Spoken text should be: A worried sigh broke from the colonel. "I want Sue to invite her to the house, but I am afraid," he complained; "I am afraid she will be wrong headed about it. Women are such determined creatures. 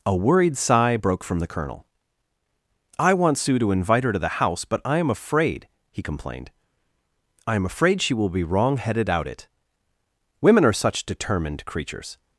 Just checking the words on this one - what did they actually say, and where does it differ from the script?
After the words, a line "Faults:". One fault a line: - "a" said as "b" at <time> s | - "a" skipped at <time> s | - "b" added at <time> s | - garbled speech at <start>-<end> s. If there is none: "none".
A worried sigh broke from the colonel. "I want Sue to invite her to the house, but I am afraid," he complained; "I am afraid she will be wrong headed out it. Women are such determined creatures.
Faults:
- "about" said as "out" at 9.1 s